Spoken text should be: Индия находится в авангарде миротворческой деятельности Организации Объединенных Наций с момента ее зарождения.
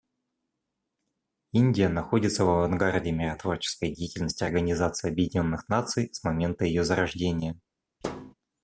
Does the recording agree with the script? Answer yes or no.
yes